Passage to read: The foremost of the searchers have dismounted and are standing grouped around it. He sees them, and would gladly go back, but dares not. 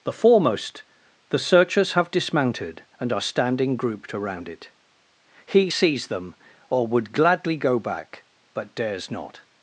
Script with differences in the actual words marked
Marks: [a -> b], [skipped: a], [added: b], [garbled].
The foremost [skipped: of] the searchers have dismounted and are standing grouped around it. He sees them, [and -> or] would gladly go back, but dares not.